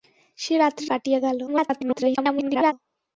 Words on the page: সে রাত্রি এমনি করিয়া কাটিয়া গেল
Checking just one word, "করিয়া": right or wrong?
wrong